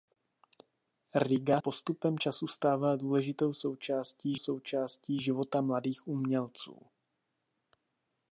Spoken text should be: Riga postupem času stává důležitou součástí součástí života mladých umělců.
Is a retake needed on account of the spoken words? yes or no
no